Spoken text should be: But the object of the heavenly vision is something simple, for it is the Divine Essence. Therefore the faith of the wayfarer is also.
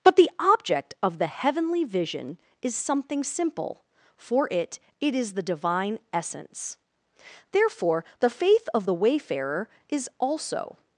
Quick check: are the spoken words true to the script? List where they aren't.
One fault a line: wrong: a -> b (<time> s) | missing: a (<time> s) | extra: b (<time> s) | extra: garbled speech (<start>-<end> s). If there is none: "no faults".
extra: it (5.0 s)